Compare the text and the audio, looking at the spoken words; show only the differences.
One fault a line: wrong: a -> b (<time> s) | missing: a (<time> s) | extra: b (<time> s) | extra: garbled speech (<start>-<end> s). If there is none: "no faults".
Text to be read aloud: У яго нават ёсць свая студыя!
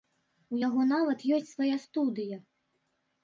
no faults